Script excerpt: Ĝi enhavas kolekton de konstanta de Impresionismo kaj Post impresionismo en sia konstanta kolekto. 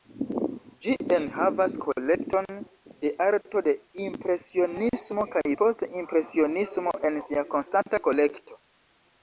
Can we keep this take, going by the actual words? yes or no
no